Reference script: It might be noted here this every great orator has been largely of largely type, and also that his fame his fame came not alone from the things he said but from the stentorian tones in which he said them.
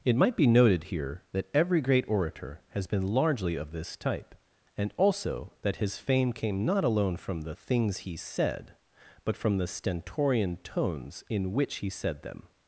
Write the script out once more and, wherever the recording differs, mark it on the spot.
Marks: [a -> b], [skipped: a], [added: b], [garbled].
It might be noted here [this -> that] every great orator has been largely of [largely -> this] type, and also that his fame [skipped: his fame] came not alone from the things he said but from the stentorian tones in which he said them.